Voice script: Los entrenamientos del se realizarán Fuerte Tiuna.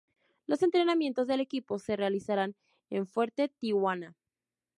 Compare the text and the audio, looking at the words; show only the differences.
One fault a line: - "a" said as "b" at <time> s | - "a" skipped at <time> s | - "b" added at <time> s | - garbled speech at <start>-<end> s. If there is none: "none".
- "equipo" added at 1.4 s
- "en" added at 2.9 s